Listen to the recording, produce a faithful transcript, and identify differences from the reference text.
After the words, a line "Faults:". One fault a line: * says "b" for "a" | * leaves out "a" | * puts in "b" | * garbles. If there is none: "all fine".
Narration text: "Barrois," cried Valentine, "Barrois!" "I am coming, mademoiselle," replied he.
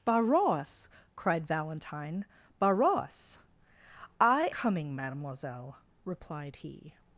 "Barrois," cried Valentine, "Barrois!" "I coming, mademoiselle," replied he.
Faults:
* leaves out "am"